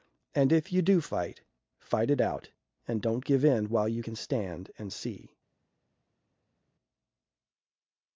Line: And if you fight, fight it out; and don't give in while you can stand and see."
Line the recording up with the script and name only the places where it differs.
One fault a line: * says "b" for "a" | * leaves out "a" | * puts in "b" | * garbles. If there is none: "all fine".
* puts in "do"